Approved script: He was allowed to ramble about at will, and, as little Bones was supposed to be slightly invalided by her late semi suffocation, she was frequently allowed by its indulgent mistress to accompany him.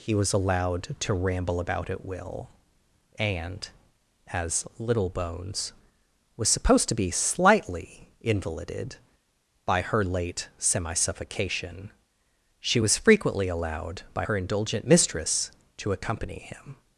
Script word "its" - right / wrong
wrong